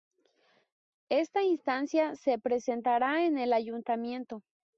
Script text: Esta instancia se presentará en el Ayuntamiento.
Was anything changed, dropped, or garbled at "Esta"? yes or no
no